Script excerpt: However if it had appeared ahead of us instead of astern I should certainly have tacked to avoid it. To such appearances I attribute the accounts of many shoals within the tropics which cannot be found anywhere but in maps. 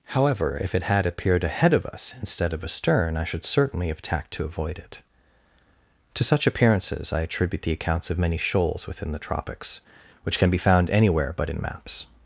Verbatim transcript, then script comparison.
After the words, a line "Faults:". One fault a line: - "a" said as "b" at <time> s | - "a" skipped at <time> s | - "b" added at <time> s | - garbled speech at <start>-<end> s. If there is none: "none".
However if it had appeared ahead of us instead of astern I should certainly have tacked to avoid it. To such appearances I attribute the accounts of many shoals within the tropics which can be found anywhere but in maps.
Faults:
- "cannot" said as "can" at 10.4 s